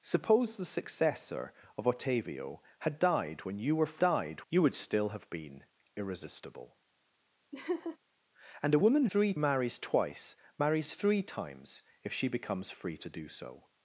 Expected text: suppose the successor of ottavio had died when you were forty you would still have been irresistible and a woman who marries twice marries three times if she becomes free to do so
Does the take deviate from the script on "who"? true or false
true